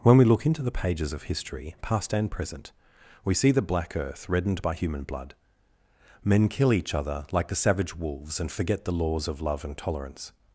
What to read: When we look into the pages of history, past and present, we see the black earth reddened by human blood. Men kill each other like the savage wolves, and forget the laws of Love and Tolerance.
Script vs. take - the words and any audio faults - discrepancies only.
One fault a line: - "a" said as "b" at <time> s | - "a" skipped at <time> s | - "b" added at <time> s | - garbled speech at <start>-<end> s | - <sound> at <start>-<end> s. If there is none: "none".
none